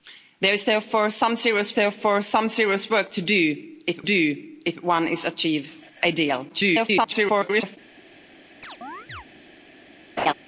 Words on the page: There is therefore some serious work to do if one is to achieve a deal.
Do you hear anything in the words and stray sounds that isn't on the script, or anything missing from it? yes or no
yes